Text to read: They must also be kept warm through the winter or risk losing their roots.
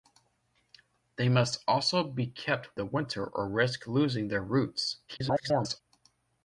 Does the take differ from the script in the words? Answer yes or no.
yes